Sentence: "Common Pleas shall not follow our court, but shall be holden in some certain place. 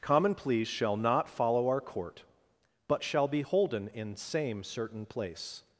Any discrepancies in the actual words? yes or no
yes